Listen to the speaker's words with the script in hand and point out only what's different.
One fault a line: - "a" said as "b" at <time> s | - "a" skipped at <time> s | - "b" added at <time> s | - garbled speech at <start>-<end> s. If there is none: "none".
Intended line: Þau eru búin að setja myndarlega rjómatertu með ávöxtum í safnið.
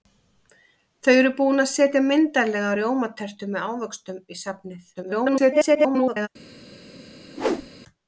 - garbled speech at 4.9-6.3 s